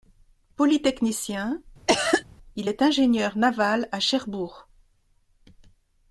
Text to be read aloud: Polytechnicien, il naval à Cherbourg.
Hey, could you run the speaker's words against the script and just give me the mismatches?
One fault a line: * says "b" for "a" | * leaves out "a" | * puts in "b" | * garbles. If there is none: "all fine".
* puts in "est ingénieur"